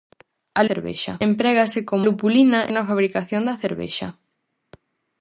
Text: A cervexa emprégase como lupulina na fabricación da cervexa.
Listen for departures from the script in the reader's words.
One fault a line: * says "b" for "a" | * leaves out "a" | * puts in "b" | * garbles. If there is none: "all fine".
all fine